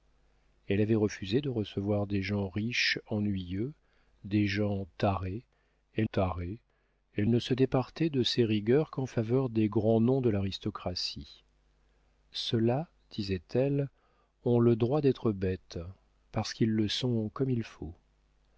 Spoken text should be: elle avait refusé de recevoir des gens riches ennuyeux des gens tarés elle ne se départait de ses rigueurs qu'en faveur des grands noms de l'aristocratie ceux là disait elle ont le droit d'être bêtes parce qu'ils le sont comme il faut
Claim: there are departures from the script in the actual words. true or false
true